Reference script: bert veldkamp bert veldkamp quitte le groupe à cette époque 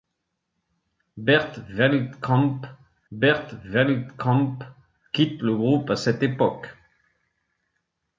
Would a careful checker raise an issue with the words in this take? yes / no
no